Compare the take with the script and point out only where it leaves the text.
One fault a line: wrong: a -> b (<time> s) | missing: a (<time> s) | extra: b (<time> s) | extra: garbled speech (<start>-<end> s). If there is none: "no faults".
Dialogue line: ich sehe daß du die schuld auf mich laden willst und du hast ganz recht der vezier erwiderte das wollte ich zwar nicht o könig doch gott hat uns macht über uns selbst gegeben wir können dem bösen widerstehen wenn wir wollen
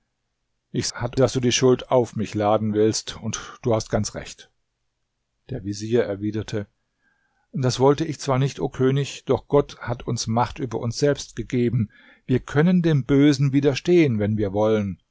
wrong: sehe -> hat (0.9 s)